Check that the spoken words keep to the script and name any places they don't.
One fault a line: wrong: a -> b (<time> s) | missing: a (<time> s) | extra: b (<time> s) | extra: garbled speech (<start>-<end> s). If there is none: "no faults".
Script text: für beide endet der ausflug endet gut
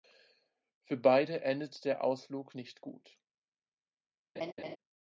wrong: endet -> nicht (2.5 s)